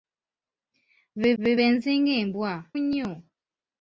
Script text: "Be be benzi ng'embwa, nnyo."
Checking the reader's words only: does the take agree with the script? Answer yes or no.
yes